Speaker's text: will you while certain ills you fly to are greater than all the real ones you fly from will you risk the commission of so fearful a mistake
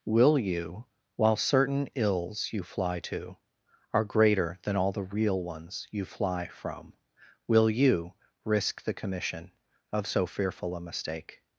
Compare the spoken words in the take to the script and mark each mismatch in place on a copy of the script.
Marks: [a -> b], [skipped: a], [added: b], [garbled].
will you while certain ills you fly to are greater than all the real ones you fly from will you risk the commission of so fearful a mistake